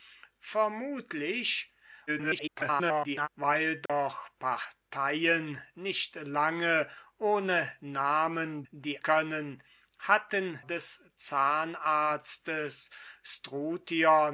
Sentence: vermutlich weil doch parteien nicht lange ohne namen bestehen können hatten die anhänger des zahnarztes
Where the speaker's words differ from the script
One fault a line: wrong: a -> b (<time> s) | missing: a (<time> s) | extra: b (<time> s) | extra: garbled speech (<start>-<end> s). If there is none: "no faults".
extra: garbled speech (2.1-3.3 s)
wrong: bestehen -> die (8.7 s)
missing: die anhänger (10.6 s)